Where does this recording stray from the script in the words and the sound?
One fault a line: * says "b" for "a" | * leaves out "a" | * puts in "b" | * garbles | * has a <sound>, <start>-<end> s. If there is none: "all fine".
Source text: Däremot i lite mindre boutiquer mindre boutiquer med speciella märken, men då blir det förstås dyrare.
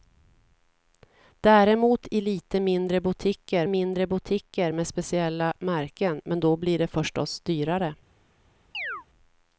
* has a chirp, 8.7-9.1 s